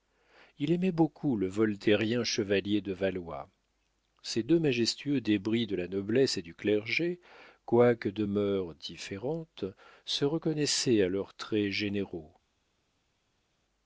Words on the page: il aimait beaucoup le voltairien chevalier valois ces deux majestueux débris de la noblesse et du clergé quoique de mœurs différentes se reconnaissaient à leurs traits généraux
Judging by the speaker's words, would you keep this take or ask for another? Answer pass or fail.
fail